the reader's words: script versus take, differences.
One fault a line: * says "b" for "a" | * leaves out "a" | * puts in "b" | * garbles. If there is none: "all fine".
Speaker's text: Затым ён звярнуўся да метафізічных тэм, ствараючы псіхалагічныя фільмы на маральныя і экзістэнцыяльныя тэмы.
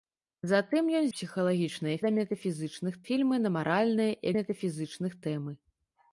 * says "псіхалагічныя" for "звярнуўся"
* leaves out "тэм ствараючы псіхалагічныя"
* says "метафізічных" for "экзістэнцыяльныя"